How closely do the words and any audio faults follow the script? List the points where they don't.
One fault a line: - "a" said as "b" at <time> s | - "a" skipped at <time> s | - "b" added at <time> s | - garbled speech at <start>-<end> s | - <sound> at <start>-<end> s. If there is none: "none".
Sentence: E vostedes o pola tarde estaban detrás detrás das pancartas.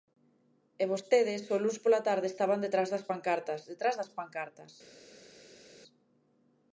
- "luns" added at 1.6 s
- "das pancartas" added at 2.9 s